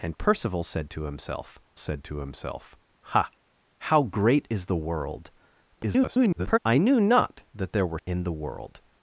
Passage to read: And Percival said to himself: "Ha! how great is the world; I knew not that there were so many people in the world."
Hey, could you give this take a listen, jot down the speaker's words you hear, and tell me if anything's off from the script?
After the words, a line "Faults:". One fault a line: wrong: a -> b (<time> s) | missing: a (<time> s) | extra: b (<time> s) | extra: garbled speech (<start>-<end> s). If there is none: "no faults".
And Percival said to himself said to himself: "Ha! how great is the world; [garbled] I knew not that there were in the world."
Faults:
extra: said to himself (1.8 s)
extra: garbled speech (5.8-6.6 s)
missing: so many people (8.0 s)